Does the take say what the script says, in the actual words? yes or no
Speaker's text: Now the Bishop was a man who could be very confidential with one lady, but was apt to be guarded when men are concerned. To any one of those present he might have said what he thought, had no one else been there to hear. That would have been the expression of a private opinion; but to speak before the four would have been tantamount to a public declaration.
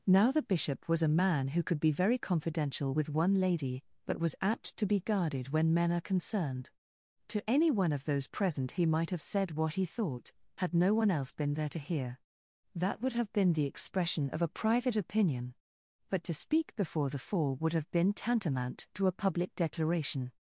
yes